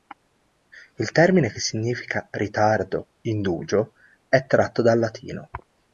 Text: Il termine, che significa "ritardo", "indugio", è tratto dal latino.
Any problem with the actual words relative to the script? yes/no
no